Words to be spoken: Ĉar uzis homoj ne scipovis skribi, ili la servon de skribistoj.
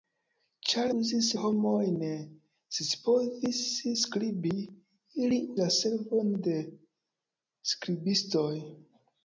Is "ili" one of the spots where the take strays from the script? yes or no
no